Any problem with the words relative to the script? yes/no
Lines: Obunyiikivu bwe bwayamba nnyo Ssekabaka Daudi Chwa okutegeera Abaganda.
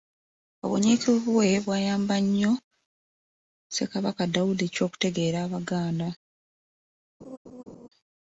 no